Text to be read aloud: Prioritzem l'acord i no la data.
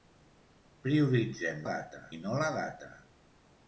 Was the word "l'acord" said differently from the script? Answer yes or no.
yes